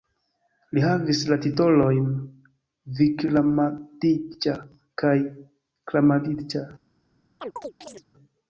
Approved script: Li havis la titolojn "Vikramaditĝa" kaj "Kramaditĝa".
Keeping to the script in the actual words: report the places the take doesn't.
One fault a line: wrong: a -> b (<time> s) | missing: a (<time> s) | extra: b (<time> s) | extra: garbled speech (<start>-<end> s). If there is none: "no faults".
no faults